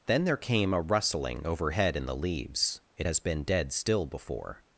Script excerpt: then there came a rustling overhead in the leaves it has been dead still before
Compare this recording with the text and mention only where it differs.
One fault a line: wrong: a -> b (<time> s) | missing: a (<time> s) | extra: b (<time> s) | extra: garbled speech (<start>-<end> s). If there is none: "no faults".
no faults